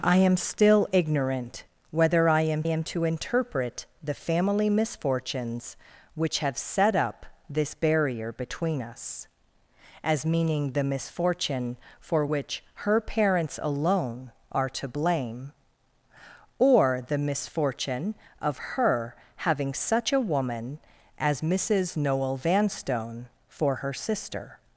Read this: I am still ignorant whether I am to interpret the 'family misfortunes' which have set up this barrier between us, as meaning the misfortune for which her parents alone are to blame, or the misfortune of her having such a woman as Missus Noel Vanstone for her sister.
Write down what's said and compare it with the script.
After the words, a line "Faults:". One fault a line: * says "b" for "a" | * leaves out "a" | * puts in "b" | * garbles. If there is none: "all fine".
I am still ignorant whether I am am to interpret the 'family misfortunes' which have set up this barrier between us, as meaning the misfortune for which her parents alone are to blame, or the misfortune of her having such a woman as Missus Noel Vanstone for her sister.
Faults:
* puts in "am"